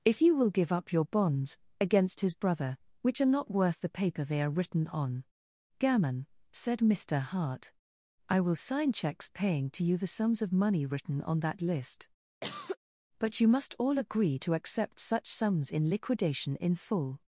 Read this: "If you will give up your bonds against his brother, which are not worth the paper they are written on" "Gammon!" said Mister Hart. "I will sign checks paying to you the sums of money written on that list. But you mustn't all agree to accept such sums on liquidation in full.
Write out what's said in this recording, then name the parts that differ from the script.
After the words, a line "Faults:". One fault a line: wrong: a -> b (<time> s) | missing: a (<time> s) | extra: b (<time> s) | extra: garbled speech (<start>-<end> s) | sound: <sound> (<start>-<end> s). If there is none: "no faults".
"If you will give up your bonds against his brother, which are not worth the paper they are written on" "Gammon!" said Mister Hart. "I will sign checks paying to you the sums of money written on that list. But you must all agree to accept such sums in liquidation in full.
Faults:
sound: cough (12.4-12.8 s)
wrong: mustn't -> must (13.5 s)
wrong: on -> in (15.7 s)